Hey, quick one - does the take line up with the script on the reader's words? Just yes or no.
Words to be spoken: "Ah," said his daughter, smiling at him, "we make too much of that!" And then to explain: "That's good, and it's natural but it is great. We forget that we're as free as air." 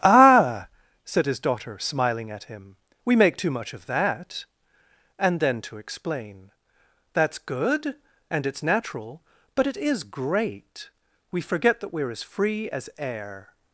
yes